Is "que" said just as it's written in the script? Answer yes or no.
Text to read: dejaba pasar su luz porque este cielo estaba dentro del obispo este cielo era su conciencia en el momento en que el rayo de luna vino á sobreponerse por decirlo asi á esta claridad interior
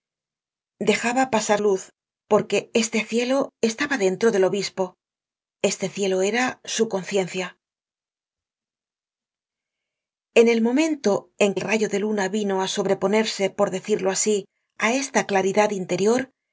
no